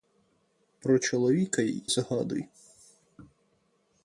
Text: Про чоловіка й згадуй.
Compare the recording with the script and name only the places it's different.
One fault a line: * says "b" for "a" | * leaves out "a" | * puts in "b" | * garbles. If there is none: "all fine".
all fine